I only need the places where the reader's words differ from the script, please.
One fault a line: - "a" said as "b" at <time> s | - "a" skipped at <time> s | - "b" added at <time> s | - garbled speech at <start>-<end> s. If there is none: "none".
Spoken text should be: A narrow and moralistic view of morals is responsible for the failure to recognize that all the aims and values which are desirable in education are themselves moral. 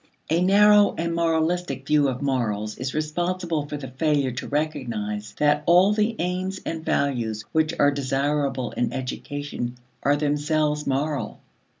none